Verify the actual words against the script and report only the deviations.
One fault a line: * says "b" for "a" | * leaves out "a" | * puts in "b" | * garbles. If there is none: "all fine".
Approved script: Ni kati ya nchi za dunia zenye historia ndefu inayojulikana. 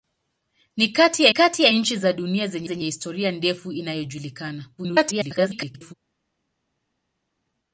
* puts in "kati ya"
* puts in "zenye"
* garbles